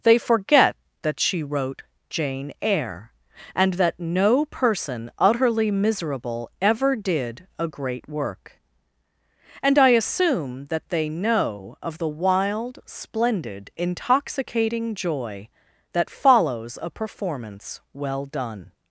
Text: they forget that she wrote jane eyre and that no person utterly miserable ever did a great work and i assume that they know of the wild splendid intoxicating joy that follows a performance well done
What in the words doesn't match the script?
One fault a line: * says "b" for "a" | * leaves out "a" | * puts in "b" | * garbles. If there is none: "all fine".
all fine